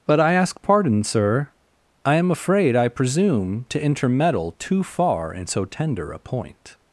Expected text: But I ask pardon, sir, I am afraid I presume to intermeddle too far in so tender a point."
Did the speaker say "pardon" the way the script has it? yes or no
yes